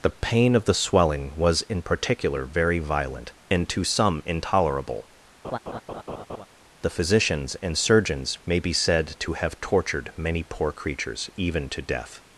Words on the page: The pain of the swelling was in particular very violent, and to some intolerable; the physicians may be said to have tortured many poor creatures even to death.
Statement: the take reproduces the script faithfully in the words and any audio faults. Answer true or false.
false